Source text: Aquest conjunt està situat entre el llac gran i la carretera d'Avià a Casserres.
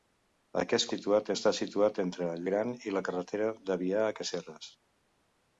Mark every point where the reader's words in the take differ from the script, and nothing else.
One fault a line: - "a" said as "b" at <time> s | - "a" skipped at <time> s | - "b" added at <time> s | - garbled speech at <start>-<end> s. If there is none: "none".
- "conjunt" said as "situat" at 0.9 s
- "llac" skipped at 2.4 s